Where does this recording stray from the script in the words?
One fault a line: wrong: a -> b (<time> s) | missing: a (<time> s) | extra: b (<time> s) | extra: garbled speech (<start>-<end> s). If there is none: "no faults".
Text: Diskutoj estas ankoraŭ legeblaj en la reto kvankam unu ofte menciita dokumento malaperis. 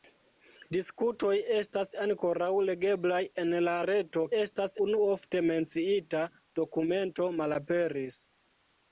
wrong: kvankam -> estas (4.4 s)